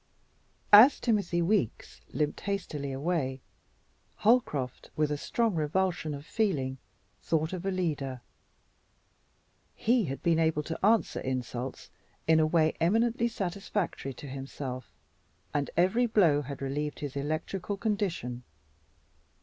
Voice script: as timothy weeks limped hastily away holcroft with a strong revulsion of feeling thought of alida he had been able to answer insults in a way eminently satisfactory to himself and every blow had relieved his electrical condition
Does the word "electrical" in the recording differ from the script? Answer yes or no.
no